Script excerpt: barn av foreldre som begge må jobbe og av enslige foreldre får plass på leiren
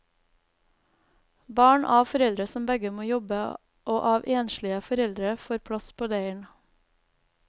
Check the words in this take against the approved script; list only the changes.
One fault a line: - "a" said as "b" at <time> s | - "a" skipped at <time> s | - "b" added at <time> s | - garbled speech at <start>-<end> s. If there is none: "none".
none